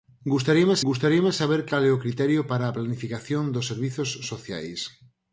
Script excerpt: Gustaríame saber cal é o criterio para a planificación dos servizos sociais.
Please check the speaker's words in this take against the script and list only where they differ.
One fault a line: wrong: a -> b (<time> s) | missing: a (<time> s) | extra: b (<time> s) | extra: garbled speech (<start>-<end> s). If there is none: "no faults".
extra: gustaríame (0.9 s)